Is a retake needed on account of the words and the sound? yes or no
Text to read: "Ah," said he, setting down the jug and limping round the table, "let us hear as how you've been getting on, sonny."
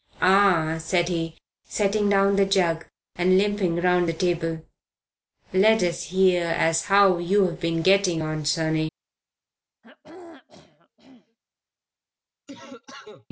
yes